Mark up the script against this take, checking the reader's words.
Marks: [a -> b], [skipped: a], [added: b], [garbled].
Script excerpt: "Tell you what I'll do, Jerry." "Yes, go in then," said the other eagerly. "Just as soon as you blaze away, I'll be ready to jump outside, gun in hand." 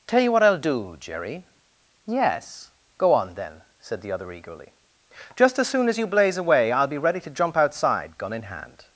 "Tell you what I'll do, Jerry." "Yes, go [in -> on] then," said the other eagerly. "Just as soon as you blaze away, I'll be ready to jump outside, gun in hand."